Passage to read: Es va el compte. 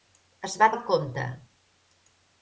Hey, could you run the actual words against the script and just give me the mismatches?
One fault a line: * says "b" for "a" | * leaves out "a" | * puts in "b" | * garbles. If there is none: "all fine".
all fine